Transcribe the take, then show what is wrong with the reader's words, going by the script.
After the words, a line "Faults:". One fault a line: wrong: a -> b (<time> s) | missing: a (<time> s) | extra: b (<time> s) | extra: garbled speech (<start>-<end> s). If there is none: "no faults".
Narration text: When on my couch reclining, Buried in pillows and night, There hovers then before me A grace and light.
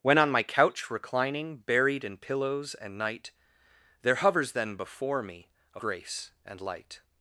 When on my couch reclining, Buried in pillows and night, There hovers then before me A grace and light.
Faults:
no faults